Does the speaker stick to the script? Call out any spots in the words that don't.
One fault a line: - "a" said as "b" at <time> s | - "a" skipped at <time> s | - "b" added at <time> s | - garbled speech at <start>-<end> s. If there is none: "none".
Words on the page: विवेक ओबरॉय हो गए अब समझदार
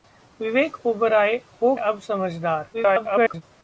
- "गए" skipped at 1.7 s
- garbled speech at 2.7-3.4 s